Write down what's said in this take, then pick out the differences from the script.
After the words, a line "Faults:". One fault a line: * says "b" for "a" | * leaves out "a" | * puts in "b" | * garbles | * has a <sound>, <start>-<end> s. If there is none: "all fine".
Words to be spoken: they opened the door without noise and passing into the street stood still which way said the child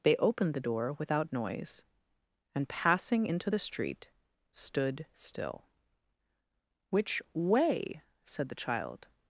they opened the door without noise and passing into the street stood still which way said the child
Faults:
all fine